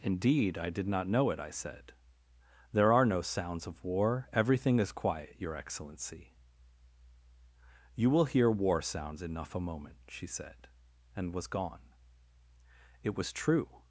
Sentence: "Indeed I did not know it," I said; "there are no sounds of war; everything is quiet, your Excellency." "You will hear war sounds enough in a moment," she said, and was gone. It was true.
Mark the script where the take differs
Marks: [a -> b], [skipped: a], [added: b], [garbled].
"Indeed I did not know it," I said; "there are no sounds of war; everything is quiet, your Excellency." "You will hear war sounds enough [skipped: in] a moment," she said, and was gone. It was true.